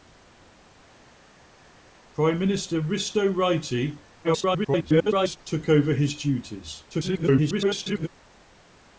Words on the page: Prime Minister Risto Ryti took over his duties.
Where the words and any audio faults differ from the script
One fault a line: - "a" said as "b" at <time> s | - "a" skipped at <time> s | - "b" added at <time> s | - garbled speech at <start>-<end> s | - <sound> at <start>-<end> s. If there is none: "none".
- garbled speech at 4.2-5.4 s
- garbled speech at 6.9-8.1 s